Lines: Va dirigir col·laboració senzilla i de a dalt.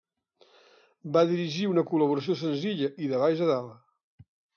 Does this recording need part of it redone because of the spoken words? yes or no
yes